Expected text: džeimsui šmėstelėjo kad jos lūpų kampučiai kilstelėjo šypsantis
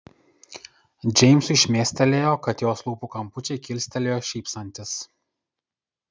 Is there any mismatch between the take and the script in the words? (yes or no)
no